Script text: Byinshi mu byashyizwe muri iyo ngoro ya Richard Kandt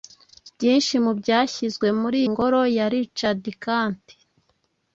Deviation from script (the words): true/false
true